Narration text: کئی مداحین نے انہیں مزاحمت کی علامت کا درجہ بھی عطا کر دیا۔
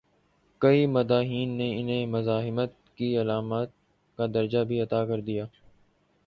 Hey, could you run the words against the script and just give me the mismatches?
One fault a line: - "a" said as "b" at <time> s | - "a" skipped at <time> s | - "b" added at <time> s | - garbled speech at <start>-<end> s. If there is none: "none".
none